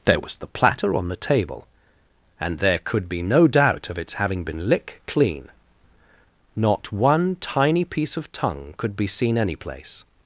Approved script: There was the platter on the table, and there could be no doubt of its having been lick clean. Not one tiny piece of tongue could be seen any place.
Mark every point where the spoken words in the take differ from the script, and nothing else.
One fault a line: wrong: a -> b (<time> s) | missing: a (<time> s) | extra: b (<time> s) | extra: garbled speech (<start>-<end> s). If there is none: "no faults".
no faults